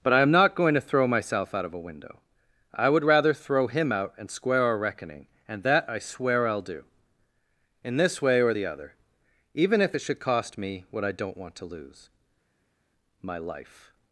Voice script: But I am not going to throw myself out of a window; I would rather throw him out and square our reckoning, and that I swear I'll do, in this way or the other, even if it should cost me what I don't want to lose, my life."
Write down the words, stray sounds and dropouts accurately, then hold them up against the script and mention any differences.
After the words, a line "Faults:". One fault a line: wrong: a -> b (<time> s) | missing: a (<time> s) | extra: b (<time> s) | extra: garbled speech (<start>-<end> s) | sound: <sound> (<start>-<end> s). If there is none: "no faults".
But I am not going to throw myself out of a window; I would rather throw him out and square our reckoning, and that I swear I'll do, in this way or the other, even if it should cost me what I don't want to lose, my life."
Faults:
no faults